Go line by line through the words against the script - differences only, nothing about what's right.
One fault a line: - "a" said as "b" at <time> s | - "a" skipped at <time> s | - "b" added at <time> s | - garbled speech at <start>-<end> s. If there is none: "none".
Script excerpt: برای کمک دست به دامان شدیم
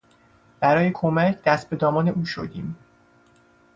- "او" added at 2.1 s